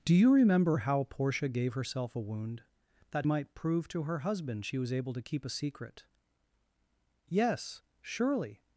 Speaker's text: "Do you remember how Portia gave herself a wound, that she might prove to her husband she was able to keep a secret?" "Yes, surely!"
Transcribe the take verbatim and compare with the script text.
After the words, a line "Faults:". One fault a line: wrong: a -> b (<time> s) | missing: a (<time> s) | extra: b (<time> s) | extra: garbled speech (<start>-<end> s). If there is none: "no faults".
"Do you remember how Portia gave herself a wound, that might prove to her husband she was able to keep a secret?" "Yes, surely!"
Faults:
missing: she (3.3 s)